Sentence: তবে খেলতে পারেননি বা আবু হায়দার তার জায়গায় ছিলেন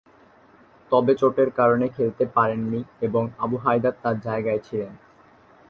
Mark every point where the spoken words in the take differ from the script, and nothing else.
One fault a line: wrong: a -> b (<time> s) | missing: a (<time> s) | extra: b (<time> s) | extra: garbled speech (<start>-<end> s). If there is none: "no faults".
extra: চোটের কারণে (1.1 s)
wrong: বা -> এবং (3.0 s)